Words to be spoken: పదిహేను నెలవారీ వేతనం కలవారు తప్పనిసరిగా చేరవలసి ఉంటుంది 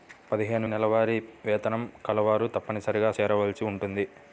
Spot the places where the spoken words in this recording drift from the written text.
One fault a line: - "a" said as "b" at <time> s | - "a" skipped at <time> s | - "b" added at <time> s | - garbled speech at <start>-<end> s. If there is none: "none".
none